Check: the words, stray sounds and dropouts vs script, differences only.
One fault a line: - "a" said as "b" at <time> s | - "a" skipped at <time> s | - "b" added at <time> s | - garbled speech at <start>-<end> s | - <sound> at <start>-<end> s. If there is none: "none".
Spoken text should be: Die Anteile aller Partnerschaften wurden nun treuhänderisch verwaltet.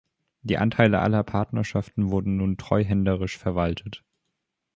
none